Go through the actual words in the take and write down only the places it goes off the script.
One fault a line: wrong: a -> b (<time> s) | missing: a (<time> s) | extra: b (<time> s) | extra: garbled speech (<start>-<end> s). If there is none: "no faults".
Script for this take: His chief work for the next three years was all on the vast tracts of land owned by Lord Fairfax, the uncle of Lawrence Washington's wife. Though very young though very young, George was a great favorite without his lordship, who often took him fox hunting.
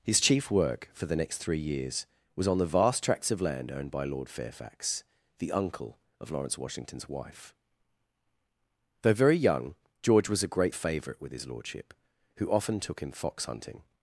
missing: all (2.5 s)
missing: though very young (9.8 s)
wrong: without -> with (11.2 s)